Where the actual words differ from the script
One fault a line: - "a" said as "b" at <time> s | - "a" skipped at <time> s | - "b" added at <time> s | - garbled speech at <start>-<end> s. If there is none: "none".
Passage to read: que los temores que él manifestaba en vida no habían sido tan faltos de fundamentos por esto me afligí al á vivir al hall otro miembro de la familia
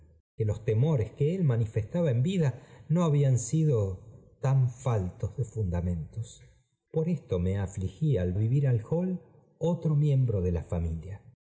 none